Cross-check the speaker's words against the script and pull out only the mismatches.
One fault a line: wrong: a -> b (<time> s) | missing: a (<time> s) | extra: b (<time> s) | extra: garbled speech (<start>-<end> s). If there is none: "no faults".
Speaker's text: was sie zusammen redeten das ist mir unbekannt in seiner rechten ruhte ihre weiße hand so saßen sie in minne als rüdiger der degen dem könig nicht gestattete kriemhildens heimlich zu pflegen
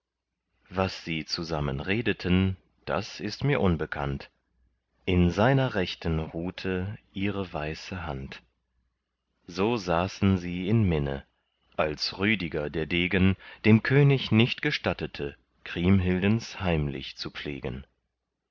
no faults